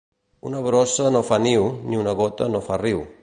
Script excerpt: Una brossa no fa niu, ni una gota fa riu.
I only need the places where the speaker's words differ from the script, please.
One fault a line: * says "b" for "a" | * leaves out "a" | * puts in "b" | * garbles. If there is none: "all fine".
* puts in "no"